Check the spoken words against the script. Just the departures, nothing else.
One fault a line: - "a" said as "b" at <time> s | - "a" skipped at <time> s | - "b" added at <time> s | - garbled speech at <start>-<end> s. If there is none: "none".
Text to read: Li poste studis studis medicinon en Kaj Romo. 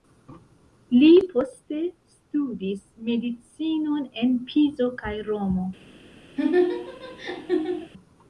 - "studis" skipped at 2.8 s
- "Pizo" added at 4.5 s